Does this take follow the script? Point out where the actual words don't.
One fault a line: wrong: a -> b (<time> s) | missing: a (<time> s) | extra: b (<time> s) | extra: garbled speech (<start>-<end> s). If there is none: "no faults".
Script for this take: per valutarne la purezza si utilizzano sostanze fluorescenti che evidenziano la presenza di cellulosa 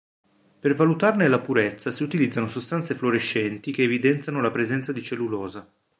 no faults